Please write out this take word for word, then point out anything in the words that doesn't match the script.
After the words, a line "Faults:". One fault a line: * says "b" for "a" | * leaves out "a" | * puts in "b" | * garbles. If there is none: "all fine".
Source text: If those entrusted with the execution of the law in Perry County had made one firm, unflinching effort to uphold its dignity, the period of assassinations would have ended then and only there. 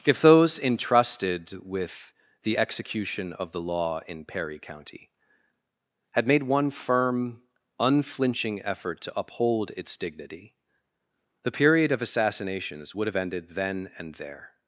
If those entrusted with the execution of the law in Perry County had made one firm, unflinching effort to uphold its dignity, the period of assassinations would have ended then and there.
Faults:
* leaves out "only"